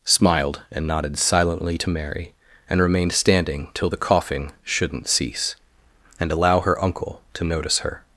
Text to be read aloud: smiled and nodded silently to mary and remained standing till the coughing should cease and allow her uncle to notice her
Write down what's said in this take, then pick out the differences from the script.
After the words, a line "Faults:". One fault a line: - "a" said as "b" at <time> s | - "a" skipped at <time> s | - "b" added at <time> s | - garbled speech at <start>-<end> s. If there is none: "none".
smiled and nodded silently to mary and remained standing till the coughing shouldn't cease and allow her uncle to notice her
Faults:
- "should" said as "shouldn't" at 4.6 s